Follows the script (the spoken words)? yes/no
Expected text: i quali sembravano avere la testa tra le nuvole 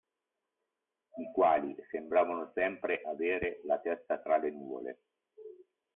no